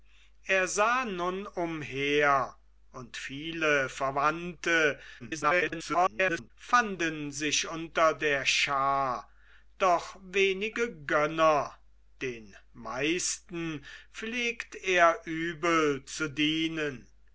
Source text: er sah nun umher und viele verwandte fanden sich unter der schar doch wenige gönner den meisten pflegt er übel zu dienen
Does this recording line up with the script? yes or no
no